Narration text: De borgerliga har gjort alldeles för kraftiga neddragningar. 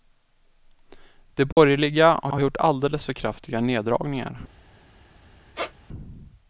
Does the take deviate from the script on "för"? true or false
false